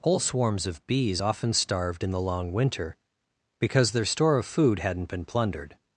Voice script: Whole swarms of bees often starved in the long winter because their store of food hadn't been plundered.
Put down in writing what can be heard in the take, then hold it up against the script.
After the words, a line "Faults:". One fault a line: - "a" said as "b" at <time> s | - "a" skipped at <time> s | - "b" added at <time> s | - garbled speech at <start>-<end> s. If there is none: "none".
Whole swarms of bees often starved in the long winter because their store of food hadn't been plundered.
Faults:
none